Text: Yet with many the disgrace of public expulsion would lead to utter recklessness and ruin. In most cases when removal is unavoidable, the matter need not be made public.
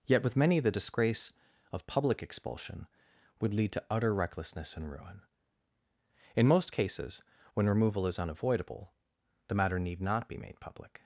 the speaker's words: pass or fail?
pass